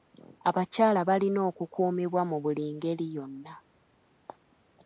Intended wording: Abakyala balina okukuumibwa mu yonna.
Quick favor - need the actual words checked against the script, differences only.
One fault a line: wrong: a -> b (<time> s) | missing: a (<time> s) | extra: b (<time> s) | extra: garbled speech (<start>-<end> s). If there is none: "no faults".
extra: buli ngeri (2.4 s)